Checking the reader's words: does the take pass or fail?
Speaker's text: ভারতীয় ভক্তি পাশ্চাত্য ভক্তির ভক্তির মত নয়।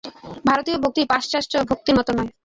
fail